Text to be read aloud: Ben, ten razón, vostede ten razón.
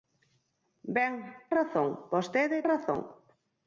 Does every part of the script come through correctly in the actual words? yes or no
no